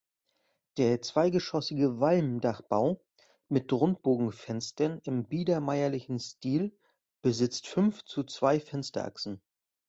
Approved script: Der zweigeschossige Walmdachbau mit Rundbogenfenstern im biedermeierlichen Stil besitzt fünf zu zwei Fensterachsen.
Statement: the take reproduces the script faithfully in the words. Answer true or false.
true